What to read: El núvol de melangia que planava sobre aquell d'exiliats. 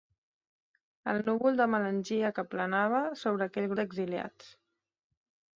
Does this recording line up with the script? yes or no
yes